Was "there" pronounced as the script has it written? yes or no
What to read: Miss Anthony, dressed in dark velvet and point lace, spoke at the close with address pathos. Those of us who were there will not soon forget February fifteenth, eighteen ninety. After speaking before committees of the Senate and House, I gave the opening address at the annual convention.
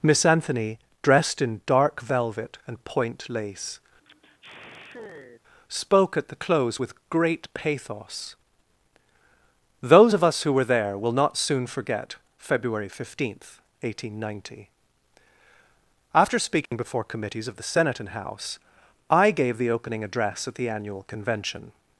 yes